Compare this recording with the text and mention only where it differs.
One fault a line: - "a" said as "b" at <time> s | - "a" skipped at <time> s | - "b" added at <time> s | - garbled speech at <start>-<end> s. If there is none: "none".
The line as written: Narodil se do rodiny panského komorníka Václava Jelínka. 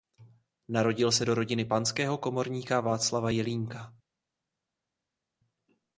none